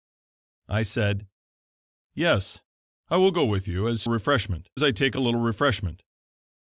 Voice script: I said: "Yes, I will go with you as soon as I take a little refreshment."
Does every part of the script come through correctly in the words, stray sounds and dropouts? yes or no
no